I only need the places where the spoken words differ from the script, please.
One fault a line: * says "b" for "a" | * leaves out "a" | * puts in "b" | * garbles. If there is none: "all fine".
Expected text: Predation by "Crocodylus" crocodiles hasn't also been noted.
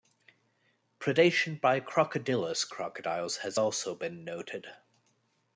* says "has" for "hasn't"